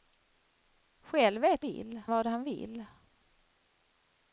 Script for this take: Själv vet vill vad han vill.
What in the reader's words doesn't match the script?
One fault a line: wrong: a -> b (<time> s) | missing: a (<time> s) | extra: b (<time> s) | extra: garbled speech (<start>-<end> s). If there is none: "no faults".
no faults